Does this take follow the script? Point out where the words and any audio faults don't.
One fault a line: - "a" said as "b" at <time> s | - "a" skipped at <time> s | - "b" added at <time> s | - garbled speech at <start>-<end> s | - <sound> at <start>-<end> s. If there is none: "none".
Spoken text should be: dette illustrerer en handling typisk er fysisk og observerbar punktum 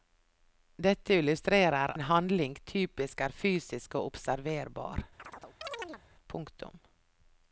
- chirp at 5.2-6.0 s